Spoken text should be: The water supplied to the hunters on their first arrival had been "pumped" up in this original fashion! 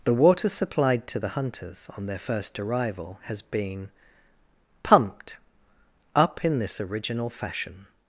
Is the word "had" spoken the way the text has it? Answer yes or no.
no